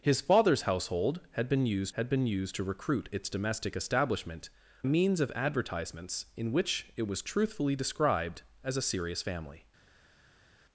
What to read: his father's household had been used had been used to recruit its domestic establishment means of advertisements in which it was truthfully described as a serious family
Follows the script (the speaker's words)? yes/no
yes